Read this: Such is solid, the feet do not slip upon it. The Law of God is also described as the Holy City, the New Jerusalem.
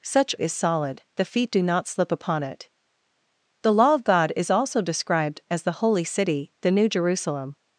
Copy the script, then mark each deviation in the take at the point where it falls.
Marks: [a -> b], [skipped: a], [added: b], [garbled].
Such is solid, the feet do not slip upon it. The Law of God is also described as the Holy City, the New Jerusalem.